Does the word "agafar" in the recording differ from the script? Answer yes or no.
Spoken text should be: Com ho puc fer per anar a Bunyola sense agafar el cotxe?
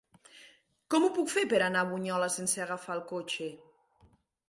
no